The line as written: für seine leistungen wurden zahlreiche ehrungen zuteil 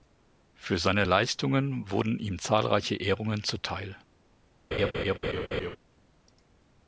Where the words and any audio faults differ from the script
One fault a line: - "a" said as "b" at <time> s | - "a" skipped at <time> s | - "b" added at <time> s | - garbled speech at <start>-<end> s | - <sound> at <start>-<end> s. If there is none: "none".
- "ihm" added at 2.2 s
- laugh at 4.7-5.8 s